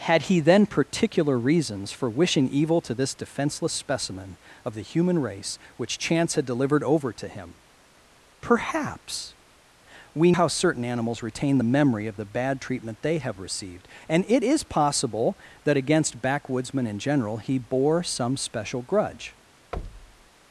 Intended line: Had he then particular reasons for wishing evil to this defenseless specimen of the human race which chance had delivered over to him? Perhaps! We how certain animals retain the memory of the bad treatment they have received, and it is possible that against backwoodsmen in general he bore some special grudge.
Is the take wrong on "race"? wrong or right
right